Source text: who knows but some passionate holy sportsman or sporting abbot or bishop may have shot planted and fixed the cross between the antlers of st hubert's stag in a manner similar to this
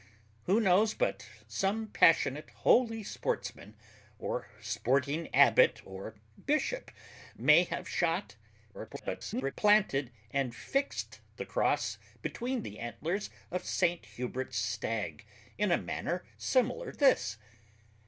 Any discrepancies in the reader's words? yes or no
yes